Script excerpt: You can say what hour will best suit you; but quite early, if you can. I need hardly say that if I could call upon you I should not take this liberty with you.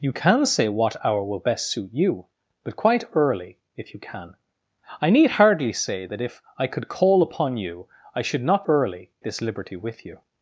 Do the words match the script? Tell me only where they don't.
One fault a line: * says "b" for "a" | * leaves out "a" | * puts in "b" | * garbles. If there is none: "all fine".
* says "early" for "take"